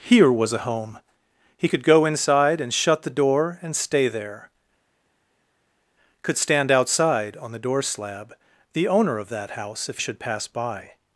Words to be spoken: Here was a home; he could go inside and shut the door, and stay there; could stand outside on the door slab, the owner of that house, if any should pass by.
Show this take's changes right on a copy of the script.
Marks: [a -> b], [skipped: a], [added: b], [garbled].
Here was a home; he could go inside and shut the door, and stay there; could stand outside on the door slab, the owner of that house, if [skipped: any] should pass by.